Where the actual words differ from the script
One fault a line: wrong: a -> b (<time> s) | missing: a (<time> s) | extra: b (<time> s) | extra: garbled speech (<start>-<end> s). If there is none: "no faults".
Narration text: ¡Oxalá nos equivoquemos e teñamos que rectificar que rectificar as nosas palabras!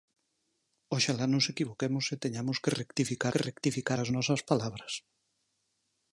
no faults